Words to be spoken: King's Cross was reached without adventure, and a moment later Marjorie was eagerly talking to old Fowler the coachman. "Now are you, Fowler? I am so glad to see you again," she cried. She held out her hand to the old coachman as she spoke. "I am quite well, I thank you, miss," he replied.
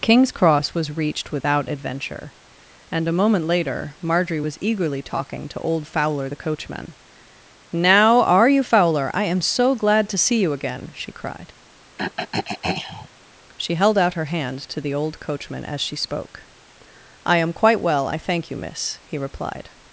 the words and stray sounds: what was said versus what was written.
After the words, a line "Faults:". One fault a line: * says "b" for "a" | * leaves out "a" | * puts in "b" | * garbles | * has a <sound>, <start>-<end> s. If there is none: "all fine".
King's Cross was reached without adventure, and a moment later Marjorie was eagerly talking to old Fowler the coachman. "Now are you, Fowler? I am so glad to see you again," she cried. She held out her hand to the old coachman as she spoke. "I am quite well, I thank you, miss," he replied.
Faults:
* has a throat clearing, 12.0-13.1 s